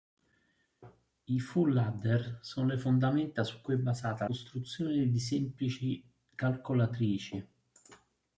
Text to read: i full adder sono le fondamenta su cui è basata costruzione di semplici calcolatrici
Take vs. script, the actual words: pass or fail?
pass